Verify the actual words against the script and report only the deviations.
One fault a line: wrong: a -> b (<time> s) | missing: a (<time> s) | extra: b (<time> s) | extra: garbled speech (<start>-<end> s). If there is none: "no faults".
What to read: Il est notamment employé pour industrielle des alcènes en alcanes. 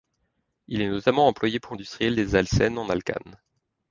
no faults